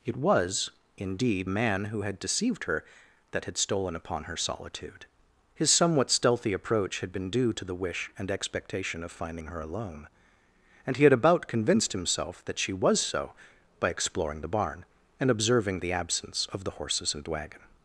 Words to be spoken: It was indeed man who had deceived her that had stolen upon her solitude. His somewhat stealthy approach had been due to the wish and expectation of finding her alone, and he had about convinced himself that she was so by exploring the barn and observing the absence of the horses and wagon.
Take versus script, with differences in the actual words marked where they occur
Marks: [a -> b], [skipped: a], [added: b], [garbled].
It was indeed man who had deceived her that had stolen upon her solitude. His somewhat stealthy approach had been due to the wish and expectation of finding her alone, and he had about convinced himself that she was so by exploring the barn and observing the absence of the horses and wagon.